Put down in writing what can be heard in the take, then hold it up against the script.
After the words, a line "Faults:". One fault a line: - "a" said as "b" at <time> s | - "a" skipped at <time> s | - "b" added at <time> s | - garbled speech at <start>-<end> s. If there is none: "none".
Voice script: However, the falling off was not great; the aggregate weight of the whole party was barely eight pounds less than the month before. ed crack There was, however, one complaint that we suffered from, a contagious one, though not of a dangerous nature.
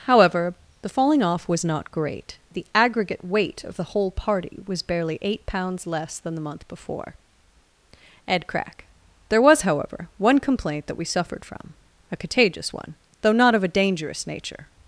However, the falling off was not great; the aggregate weight of the whole party was barely eight pounds less than the month before. ed crack There was, however, one complaint that we suffered from, a contagious one, though not of a dangerous nature.
Faults:
none